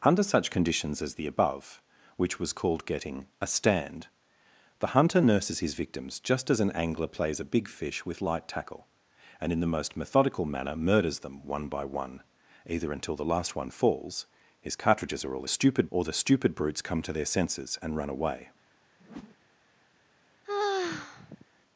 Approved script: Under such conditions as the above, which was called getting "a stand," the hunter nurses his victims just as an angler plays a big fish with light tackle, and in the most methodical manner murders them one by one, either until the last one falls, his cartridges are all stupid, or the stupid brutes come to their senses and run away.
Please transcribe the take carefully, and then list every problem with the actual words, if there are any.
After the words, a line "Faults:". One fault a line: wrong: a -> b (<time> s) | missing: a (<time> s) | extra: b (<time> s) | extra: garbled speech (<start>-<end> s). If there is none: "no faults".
Under such conditions as the above, which was called getting "a stand," the hunter nurses his victims just as an angler plays a big fish with light tackle, and in the most methodical manner murders them one by one, either until the last one falls, his cartridges are all stupid, or the stupid brutes come to their senses and run away.
Faults:
no faults